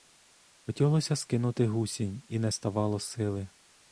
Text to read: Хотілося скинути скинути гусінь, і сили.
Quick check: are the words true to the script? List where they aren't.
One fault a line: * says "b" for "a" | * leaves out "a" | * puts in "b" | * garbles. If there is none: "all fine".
* leaves out "скинути"
* puts in "не ставало"